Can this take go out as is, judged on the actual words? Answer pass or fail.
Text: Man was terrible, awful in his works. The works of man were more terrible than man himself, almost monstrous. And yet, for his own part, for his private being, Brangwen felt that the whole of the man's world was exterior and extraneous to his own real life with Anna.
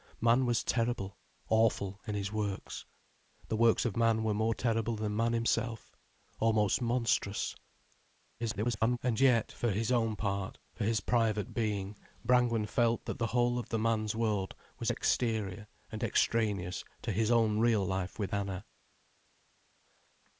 fail